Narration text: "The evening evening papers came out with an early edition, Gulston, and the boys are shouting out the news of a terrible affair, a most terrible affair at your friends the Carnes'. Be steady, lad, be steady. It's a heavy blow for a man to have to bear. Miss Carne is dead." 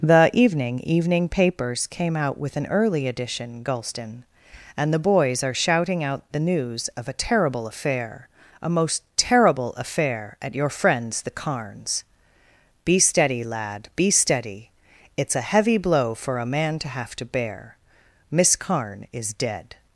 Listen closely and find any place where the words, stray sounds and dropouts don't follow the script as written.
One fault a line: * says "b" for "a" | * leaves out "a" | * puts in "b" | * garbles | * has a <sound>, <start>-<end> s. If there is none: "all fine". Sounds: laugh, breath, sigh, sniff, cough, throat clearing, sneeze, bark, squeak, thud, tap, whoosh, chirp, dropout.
all fine